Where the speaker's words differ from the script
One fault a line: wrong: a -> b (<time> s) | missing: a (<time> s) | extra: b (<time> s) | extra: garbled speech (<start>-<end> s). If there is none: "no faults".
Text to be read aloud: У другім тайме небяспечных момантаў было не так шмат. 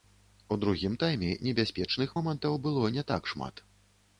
no faults